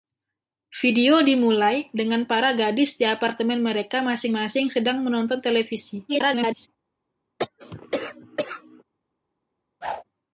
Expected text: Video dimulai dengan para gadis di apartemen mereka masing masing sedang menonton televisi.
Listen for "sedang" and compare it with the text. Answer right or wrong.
right